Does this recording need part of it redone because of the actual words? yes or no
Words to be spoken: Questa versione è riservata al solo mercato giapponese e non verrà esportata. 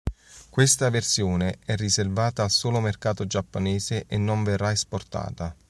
no